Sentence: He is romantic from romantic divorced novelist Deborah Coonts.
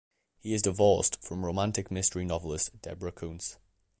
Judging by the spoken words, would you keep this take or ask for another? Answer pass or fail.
fail